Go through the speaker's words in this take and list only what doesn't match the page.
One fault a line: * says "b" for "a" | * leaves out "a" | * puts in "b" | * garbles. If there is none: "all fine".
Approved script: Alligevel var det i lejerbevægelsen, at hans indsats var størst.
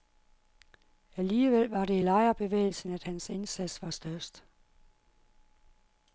all fine